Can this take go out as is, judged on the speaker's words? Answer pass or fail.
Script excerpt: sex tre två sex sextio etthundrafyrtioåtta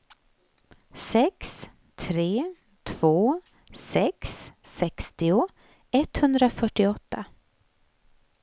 pass